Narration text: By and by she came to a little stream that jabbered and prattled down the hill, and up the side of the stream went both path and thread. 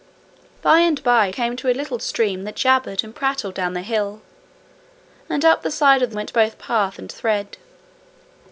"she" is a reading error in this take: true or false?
true